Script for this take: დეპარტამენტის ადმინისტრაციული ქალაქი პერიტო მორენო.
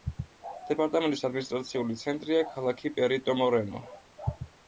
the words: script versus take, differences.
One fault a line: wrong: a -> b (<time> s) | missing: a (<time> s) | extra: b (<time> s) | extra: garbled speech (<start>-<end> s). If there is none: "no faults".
extra: ცენტრია (2.0 s)